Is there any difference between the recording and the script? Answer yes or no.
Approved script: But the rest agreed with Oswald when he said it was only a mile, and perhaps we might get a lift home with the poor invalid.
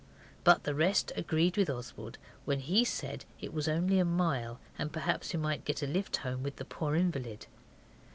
no